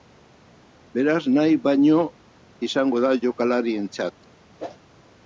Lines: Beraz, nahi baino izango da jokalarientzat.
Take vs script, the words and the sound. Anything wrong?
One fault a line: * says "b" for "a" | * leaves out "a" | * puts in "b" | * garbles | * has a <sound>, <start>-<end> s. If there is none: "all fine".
* has a whoosh, 4.6-4.8 s